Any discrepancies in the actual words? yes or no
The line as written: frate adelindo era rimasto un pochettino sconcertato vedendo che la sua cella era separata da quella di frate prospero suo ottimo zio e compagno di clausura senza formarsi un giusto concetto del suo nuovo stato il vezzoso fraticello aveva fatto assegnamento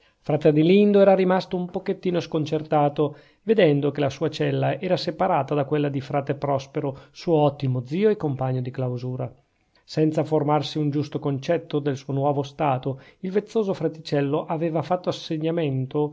no